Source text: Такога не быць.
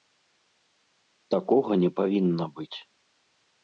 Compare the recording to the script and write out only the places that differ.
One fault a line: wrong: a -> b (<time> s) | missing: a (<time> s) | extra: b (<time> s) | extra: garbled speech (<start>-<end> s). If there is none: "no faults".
extra: павінна (2.0 s)